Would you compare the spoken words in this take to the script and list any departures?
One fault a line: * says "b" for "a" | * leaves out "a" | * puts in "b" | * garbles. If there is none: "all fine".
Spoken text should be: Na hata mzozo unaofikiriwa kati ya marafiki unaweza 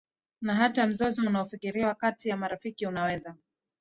all fine